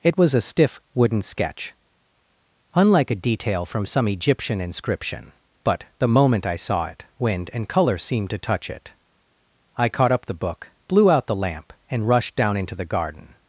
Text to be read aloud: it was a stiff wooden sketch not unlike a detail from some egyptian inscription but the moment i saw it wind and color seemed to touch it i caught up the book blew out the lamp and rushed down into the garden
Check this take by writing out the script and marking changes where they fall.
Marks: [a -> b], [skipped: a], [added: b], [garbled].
it was a stiff wooden sketch [skipped: not] unlike a detail from some egyptian inscription but the moment i saw it wind and color seemed to touch it i caught up the book blew out the lamp and rushed down into the garden